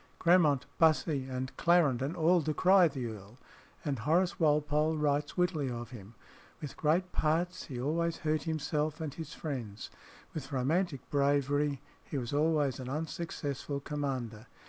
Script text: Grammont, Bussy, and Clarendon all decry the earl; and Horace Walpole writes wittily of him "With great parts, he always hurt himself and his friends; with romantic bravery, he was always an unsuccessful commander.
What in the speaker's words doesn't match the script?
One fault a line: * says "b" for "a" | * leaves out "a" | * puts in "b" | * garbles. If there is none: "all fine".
all fine